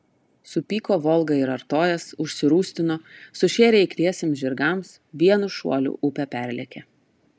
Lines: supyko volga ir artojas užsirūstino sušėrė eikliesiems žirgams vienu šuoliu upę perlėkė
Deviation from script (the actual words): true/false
false